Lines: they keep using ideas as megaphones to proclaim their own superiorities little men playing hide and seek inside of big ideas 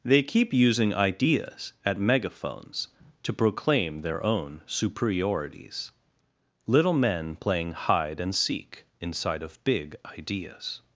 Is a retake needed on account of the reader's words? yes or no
yes